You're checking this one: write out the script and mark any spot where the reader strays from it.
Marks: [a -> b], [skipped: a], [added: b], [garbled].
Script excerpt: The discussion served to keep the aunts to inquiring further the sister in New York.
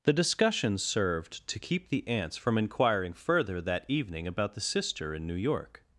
The discussion served to keep the aunts [to -> from] inquiring further [added: that evening about] the sister in New York.